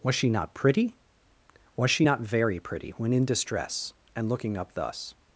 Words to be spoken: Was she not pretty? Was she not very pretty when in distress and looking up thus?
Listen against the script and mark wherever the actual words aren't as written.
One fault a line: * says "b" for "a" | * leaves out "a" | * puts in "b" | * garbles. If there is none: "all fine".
all fine